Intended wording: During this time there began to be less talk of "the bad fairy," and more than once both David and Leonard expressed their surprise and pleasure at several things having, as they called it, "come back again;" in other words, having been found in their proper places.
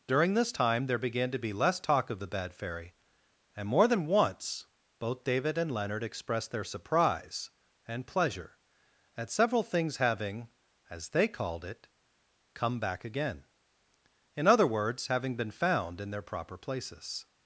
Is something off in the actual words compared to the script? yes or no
no